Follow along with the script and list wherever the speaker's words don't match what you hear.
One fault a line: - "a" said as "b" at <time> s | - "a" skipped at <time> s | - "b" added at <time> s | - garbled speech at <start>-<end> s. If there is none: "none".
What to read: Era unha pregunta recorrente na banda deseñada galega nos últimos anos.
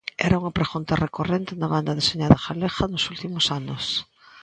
none